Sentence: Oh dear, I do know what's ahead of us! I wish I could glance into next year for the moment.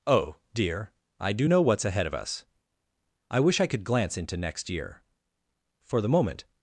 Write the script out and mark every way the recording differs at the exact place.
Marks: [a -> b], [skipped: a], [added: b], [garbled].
Oh dear, I do know what's ahead of us! I wish I could glance into next year for the moment.